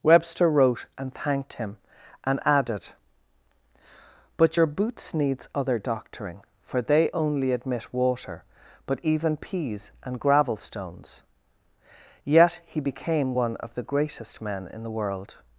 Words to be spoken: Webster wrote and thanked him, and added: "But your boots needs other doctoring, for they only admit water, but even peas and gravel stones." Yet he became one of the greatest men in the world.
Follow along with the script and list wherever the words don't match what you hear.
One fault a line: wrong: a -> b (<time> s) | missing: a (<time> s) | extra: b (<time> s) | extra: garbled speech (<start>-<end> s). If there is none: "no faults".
no faults